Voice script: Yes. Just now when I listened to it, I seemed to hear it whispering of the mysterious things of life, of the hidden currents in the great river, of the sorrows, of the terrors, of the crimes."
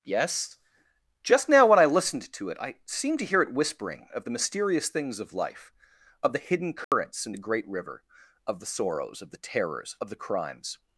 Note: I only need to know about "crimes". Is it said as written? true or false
true